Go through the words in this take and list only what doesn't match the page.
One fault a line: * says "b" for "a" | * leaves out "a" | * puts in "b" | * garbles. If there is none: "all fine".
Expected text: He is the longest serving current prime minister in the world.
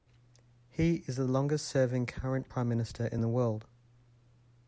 all fine